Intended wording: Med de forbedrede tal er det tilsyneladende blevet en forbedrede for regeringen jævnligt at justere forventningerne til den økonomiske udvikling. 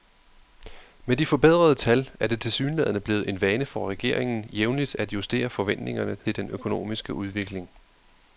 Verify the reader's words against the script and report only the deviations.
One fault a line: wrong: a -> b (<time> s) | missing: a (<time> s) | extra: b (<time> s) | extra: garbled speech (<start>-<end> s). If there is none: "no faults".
wrong: forbedrede -> vane (3.4 s)